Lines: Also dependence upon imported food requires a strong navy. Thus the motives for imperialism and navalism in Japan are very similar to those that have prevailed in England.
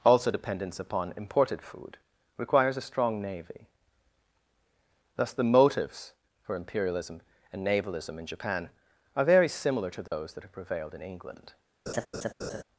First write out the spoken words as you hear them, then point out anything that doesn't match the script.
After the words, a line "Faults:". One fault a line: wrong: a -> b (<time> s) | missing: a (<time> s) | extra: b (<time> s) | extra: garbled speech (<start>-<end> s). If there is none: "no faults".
Also dependence upon imported food requires a strong navy. Thus the motives for imperialism and navalism in Japan are very similar to those that have prevailed in England.
Faults:
no faults